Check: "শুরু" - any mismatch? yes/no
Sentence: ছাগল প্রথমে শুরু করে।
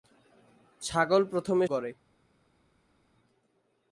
yes